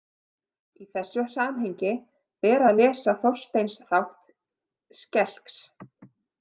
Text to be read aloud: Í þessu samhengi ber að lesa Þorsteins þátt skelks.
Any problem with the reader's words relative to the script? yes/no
no